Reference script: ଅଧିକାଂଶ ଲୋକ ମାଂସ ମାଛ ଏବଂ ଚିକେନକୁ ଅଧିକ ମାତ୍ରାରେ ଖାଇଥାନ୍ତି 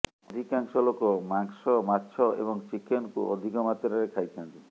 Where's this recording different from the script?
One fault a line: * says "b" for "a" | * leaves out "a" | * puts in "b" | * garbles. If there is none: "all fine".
all fine